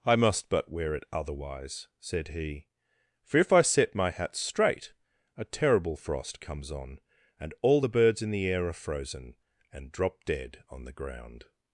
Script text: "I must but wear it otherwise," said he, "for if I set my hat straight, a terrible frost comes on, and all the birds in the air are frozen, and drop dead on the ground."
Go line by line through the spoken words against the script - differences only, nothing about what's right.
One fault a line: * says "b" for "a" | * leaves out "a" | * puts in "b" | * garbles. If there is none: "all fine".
all fine